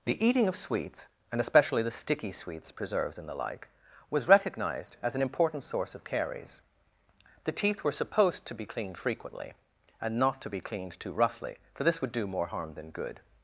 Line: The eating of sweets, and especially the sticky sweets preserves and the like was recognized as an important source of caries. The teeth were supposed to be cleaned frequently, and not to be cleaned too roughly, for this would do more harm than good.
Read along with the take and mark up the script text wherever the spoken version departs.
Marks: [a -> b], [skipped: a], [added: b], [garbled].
The eating of sweets, and especially the sticky sweets preserves and the like was recognized as an important source of caries. The teeth were supposed to be cleaned frequently, and not to be cleaned too roughly, for this would do more harm than good.